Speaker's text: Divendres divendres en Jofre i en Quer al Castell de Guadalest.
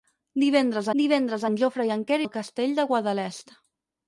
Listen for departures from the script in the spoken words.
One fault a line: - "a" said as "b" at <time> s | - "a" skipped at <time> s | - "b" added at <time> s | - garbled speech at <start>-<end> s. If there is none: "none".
none